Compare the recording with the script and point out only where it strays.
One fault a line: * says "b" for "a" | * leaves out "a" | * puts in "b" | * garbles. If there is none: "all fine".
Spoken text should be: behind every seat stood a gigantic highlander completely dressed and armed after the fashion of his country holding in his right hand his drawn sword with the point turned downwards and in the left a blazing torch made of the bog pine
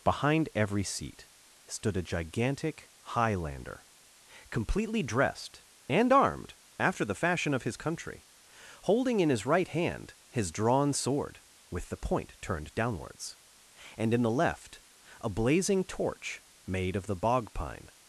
all fine